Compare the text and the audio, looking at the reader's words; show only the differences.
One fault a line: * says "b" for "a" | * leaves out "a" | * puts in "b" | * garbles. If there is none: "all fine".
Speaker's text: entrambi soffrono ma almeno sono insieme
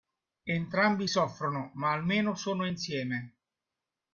all fine